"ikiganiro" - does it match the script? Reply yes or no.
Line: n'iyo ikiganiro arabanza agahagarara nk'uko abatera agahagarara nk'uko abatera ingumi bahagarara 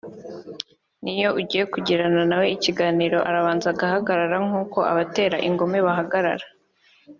no